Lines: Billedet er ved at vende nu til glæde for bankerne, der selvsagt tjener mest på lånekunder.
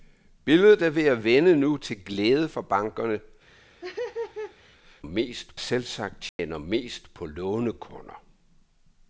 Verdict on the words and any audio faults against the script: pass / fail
fail